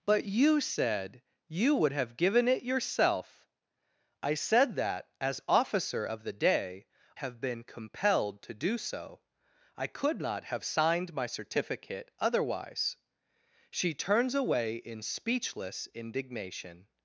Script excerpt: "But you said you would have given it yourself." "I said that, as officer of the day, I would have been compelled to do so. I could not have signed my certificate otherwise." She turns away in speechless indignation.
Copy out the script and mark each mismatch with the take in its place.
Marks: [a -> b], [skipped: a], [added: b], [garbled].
"But you said you would have given it yourself." "I said that, as officer of the day, [skipped: I would] have been compelled to do so. I could not have signed my certificate otherwise." She turns away in speechless indignation.